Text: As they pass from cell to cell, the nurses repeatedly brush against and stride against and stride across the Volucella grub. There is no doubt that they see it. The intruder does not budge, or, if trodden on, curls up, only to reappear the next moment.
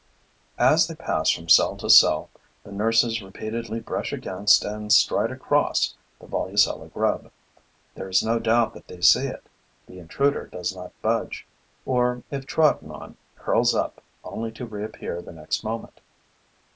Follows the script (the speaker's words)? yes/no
no